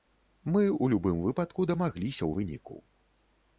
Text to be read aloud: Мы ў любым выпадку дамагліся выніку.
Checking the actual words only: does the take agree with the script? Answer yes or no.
yes